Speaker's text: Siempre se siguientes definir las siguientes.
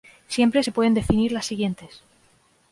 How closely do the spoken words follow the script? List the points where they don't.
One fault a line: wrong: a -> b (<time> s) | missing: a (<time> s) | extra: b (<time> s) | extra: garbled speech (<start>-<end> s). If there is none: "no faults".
wrong: siguientes -> pueden (0.7 s)